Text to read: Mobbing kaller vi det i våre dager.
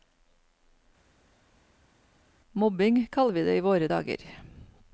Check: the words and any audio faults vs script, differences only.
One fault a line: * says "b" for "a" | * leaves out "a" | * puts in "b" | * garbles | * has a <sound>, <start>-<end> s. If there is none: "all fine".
all fine